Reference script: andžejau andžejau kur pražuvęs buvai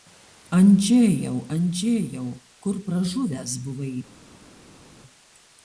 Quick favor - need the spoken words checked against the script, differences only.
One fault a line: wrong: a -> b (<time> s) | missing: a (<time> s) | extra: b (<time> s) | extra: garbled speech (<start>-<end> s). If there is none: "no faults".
no faults